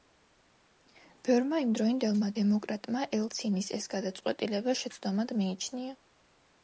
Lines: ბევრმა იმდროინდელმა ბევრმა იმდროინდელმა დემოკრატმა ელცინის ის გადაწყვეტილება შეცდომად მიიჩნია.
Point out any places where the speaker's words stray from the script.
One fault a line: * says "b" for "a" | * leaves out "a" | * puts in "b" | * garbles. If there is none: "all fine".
* leaves out "ბევრმა იმდროინდელმა"
* says "ეს" for "ის"